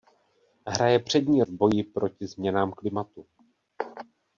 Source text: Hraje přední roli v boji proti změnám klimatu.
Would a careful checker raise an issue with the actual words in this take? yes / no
yes